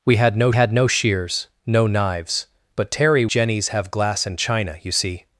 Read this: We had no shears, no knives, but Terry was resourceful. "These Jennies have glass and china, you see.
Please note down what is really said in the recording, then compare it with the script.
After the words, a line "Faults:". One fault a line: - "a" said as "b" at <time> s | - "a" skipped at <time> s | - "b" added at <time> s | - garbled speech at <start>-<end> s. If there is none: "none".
We had no had no shears, no knives, but Terry Jennies have glass and china, you see.
Faults:
- "had no" added at 0.5 s
- "was resourceful These" skipped at 3.3 s